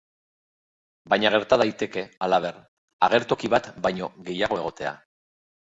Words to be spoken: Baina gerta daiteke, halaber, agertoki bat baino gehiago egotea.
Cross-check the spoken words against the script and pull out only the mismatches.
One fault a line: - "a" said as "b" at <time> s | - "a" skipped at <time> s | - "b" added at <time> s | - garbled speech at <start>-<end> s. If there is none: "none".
none